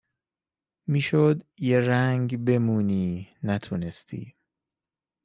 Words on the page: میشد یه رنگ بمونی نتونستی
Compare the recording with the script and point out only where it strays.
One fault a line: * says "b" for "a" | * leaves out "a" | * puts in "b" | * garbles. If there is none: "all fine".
all fine